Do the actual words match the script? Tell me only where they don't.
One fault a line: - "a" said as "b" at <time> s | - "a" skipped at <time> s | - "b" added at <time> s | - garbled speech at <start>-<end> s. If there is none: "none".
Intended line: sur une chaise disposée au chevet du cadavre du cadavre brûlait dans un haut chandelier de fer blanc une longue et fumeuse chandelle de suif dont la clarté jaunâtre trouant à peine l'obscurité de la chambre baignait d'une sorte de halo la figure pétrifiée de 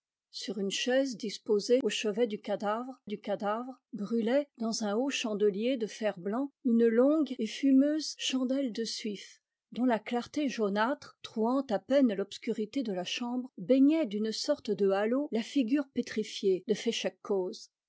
none